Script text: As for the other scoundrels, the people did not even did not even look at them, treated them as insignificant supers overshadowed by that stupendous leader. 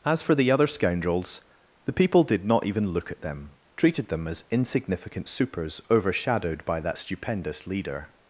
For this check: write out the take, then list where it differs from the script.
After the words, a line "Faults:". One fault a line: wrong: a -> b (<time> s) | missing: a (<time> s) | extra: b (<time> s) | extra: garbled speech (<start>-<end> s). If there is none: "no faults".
As for the other scoundrels, the people did not even look at them, treated them as insignificant supers overshadowed by that stupendous leader.
Faults:
missing: did not even (2.9 s)